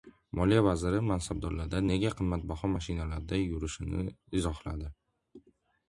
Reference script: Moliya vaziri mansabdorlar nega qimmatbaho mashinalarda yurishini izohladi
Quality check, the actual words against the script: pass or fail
pass